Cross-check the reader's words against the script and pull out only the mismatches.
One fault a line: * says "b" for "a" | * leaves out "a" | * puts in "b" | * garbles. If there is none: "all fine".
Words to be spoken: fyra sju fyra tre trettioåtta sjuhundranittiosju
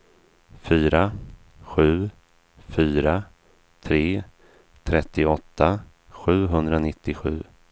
all fine